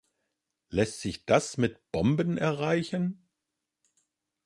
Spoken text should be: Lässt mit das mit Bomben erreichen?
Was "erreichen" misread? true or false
false